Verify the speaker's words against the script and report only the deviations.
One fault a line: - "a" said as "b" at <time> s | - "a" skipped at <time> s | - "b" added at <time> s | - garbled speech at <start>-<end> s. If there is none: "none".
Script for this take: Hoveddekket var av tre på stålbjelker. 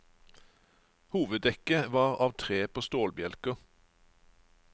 none